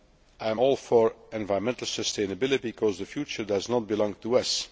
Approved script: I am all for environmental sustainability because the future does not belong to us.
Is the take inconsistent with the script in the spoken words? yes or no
no